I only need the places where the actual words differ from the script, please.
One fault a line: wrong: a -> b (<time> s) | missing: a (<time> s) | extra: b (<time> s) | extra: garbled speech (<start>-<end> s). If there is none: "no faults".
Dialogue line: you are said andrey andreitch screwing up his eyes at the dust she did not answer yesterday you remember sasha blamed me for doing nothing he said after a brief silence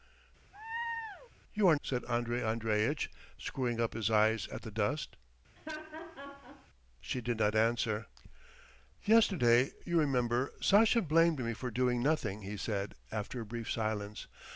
no faults